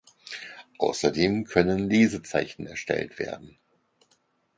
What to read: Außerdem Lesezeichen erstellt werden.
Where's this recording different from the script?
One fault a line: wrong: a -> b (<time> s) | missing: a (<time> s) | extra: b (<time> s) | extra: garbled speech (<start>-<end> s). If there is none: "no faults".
extra: können (1.4 s)